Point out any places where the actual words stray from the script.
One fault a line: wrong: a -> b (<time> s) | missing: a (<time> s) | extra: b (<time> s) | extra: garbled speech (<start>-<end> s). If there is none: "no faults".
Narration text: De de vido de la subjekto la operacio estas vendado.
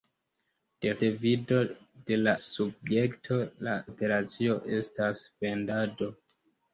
no faults